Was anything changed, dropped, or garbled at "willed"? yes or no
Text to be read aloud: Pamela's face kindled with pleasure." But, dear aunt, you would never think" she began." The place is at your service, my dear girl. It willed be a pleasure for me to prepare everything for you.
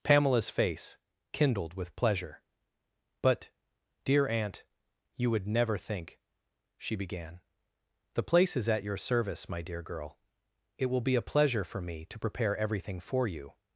yes